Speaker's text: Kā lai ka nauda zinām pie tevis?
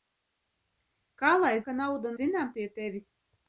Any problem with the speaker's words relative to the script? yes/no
no